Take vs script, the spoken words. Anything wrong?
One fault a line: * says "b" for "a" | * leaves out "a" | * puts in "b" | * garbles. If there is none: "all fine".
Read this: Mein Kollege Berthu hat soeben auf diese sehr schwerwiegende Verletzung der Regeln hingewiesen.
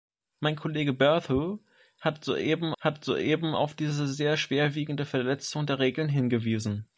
* puts in "hat soeben"